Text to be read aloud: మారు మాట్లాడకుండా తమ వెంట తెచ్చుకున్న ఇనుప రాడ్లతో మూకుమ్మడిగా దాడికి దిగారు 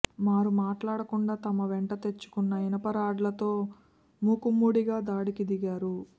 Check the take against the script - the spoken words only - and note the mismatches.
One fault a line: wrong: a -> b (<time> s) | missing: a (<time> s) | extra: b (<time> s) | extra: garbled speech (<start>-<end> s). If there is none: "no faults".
no faults